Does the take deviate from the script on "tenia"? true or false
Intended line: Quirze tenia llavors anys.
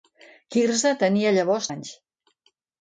false